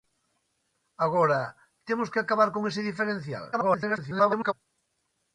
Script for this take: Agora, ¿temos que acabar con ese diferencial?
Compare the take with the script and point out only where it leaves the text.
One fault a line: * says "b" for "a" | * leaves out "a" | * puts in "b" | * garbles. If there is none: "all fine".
* garbles